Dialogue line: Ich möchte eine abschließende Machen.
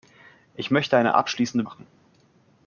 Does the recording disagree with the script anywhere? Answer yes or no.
no